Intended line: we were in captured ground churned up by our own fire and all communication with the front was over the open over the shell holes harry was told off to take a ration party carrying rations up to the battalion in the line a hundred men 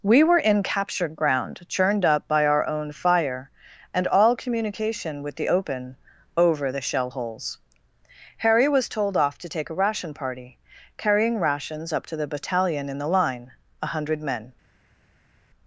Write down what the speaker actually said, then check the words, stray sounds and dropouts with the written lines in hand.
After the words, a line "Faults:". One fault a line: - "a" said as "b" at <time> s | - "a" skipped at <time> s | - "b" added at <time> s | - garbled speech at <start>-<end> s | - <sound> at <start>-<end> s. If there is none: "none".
we were in captured ground churned up by our own fire and all communication with the open over the shell holes harry was told off to take a ration party carrying rations up to the battalion in the line a hundred men
Faults:
- "front was over the" skipped at 5.5 s